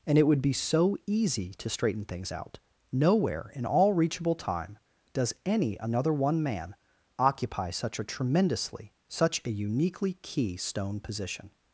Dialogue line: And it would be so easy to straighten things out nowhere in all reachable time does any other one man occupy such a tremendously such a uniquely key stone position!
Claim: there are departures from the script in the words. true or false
true